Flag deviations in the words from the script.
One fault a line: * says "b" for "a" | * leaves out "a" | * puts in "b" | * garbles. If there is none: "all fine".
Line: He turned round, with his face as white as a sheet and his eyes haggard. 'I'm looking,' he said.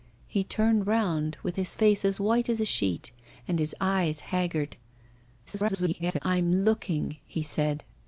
* garbles